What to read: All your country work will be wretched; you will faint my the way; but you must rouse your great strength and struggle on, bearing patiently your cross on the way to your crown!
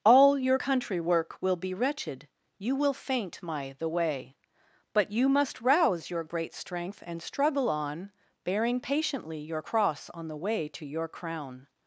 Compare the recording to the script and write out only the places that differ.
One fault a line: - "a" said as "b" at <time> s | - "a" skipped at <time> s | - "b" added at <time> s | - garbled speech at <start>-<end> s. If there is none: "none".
none